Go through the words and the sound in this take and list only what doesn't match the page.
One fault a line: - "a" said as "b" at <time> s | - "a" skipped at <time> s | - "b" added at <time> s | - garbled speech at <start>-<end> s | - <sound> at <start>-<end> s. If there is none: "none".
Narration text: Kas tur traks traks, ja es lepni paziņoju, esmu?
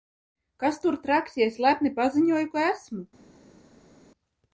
- "traks" skipped at 1.4 s
- "ka" added at 2.6 s